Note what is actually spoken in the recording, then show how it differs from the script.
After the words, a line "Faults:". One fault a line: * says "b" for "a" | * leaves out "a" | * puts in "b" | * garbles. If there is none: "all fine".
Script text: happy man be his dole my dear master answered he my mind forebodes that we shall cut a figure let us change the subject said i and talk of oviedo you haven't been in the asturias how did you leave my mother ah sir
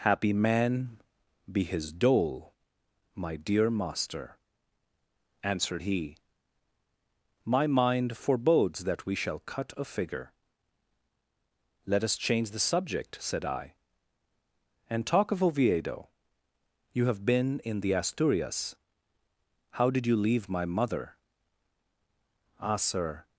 happy man be his dole my dear master answered he my mind forebodes that we shall cut a figure let us change the subject said i and talk of oviedo you have been in the asturias how did you leave my mother ah sir
Faults:
* says "have" for "haven't"